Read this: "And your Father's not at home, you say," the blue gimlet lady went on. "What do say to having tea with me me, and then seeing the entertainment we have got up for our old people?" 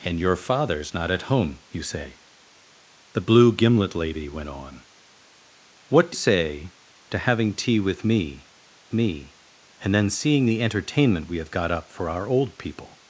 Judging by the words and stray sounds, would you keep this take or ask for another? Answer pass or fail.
pass